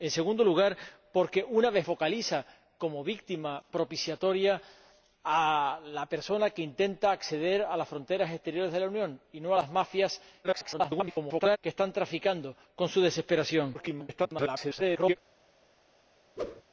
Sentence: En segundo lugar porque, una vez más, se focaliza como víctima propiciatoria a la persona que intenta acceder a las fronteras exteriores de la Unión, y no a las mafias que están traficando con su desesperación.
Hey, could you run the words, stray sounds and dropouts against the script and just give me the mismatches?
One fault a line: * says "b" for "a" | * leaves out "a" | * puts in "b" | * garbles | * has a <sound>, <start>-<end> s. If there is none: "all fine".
* leaves out "más se"
* garbles
* garbles
* has a whoosh, 16.4-16.6 s